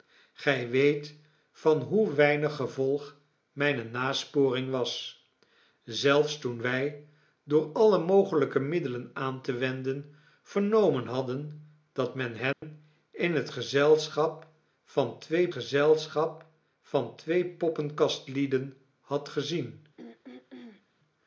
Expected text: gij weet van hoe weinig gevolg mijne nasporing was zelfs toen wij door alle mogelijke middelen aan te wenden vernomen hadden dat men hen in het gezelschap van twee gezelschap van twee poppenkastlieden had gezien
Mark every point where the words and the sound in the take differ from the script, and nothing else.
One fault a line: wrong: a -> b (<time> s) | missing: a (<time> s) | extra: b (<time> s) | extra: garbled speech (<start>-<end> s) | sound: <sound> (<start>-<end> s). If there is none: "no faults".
sound: dropout (12.5-12.6 s)
sound: throat clearing (20.0-20.9 s)